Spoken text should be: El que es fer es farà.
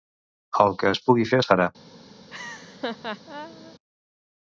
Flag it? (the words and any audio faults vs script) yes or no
yes